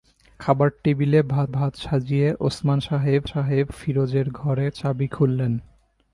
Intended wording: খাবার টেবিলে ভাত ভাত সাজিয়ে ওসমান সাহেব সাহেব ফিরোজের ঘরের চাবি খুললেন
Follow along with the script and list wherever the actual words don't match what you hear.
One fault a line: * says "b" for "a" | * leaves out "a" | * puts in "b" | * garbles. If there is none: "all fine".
all fine